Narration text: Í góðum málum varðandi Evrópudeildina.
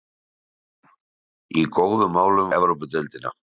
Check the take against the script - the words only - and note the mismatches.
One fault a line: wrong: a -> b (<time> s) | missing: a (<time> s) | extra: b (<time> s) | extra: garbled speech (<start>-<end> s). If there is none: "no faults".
missing: varðandi (2.5 s)